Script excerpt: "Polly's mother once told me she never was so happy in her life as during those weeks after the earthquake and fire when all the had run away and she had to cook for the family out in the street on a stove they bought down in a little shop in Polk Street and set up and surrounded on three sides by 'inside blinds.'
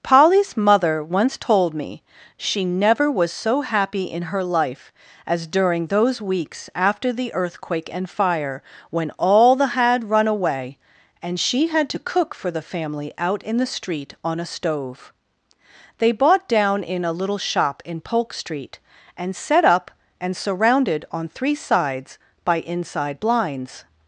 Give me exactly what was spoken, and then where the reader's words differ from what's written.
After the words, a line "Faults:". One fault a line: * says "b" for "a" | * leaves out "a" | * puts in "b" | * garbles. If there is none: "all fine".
"Polly's mother once told me she never was so happy in her life as during those weeks after the earthquake and fire when all the had run away and she had to cook for the family out in the street on a stove they bought down in a little shop in Polk Street and set up and surrounded on three sides by 'inside blinds.'
Faults:
all fine